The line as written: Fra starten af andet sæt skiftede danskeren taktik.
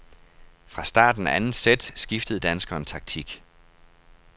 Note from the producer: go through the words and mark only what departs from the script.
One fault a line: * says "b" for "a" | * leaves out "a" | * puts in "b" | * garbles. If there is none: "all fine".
all fine